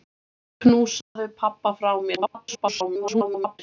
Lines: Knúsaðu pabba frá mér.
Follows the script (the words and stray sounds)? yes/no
no